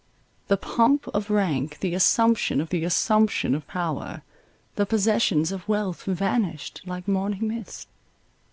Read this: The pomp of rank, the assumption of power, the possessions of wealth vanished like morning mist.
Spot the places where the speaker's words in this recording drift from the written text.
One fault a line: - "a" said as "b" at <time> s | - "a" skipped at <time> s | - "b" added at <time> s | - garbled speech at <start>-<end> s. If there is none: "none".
- "the assumption of" added at 2.7 s